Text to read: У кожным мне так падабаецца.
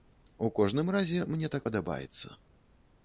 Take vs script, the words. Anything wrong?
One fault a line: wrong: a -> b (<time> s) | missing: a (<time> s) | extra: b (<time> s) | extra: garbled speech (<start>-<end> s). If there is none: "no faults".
extra: разе (0.9 s)